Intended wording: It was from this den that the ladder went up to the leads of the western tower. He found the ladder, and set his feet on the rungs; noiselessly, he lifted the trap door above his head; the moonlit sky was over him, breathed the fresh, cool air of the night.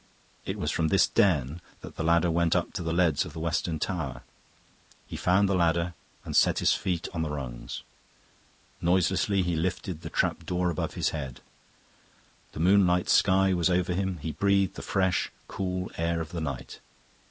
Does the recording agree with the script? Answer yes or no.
no